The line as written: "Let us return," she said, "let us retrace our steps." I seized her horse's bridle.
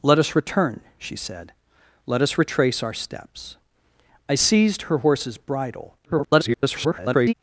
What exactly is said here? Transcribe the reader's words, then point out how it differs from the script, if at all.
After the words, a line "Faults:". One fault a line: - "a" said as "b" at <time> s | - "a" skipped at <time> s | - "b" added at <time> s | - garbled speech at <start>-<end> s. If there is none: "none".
"Let us return," she said, "let us retrace our steps." I seized her horse's bridle. [garbled]
Faults:
- garbled speech at 6.0-7.3 s